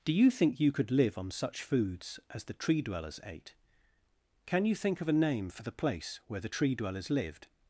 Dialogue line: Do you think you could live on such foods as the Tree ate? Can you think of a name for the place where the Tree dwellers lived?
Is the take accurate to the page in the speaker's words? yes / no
no